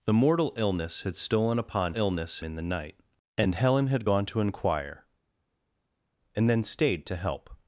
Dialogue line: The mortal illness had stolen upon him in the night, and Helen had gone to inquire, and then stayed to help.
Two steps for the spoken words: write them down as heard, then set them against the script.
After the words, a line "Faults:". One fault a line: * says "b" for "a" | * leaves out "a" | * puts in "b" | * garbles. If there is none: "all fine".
The mortal illness had stolen upon illness in the night, and Helen had gone to inquire, and then stayed to help.
Faults:
* says "illness" for "him"